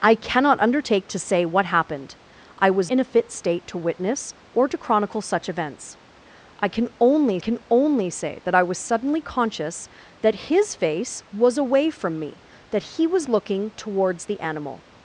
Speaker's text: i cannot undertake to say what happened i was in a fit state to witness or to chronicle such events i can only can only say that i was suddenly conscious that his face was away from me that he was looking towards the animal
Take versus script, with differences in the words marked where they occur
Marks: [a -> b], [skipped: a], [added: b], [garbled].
i cannot undertake to say what happened i was in a fit state to witness or to chronicle such events i can only can only say that i was suddenly conscious that his face was away from me that he was looking towards the animal